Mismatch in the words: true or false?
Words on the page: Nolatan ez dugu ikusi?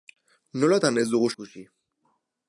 false